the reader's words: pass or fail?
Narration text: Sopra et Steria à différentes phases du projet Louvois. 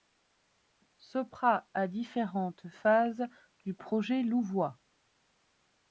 fail